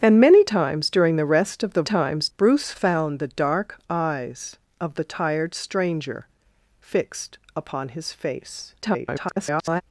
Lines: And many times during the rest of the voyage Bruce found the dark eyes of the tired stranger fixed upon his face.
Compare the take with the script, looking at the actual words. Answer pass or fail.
fail